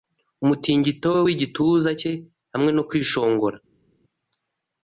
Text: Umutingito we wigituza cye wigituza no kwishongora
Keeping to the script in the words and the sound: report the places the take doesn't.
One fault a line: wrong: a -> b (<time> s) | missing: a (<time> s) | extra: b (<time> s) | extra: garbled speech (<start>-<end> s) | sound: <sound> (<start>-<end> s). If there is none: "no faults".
wrong: wigituza -> hamwe (2.5 s)